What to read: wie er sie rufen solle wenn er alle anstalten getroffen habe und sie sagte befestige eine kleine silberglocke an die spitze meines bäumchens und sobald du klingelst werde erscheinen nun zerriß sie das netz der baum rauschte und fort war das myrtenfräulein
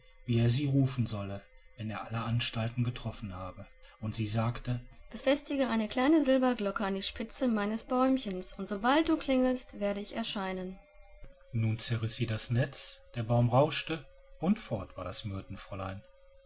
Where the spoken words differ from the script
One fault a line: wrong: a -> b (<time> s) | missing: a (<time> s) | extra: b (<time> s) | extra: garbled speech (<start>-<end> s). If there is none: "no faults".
extra: ich (10.0 s)